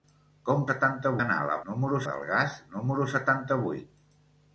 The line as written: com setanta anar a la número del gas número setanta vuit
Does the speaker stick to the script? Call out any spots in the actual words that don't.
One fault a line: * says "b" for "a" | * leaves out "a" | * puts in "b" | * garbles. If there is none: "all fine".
all fine